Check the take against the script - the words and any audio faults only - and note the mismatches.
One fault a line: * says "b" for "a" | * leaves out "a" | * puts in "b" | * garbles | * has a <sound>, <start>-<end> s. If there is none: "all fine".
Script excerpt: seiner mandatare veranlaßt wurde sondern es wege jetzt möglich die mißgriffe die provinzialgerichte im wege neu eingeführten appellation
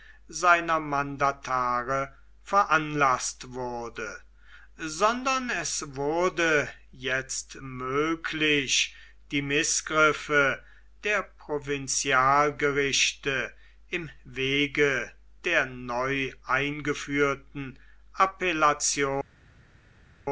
* says "wurde" for "wege"
* says "der" for "die"
* puts in "der"